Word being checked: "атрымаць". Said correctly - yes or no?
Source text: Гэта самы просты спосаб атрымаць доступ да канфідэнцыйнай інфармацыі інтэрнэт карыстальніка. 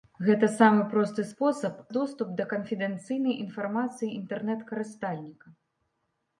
no